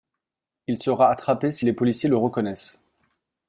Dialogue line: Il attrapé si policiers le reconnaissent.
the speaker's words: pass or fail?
fail